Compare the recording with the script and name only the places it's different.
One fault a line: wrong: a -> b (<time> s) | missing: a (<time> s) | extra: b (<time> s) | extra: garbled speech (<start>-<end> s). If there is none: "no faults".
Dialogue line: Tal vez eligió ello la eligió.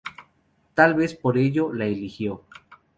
wrong: eligió -> por (1.1 s)